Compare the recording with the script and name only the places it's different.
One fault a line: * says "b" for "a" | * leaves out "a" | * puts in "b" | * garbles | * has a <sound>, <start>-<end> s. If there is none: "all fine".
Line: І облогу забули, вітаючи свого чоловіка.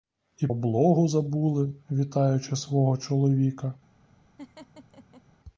* has a laugh, 4.4-5.2 s